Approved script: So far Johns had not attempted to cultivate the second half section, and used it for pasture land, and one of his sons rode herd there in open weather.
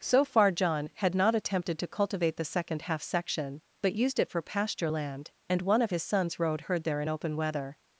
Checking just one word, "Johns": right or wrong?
wrong